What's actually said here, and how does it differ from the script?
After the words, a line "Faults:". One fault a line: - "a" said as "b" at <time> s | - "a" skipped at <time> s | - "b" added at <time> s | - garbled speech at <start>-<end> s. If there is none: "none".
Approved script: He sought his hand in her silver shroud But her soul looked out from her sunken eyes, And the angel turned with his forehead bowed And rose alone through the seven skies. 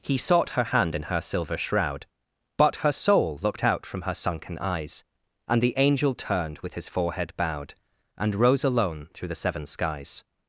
He sought her hand in her silver shroud But her soul looked out from her sunken eyes, And the angel turned with his forehead bowed And rose alone through the seven skies.
Faults:
- "his" said as "her" at 0.5 s